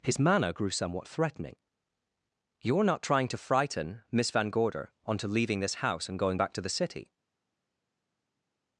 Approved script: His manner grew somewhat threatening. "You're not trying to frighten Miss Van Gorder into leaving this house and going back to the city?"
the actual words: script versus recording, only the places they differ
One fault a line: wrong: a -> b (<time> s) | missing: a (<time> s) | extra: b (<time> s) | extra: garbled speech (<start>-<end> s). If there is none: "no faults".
wrong: into -> onto (5.0 s)